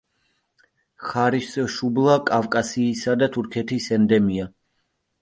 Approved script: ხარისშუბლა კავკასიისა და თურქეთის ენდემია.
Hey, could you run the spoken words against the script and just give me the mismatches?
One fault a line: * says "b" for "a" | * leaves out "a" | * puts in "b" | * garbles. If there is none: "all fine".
all fine